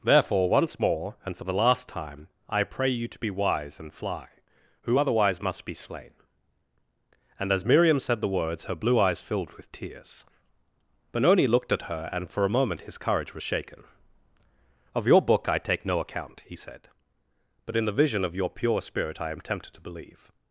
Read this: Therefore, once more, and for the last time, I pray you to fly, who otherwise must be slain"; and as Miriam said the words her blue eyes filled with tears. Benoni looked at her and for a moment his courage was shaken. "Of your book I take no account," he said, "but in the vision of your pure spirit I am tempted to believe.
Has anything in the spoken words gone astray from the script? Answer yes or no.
yes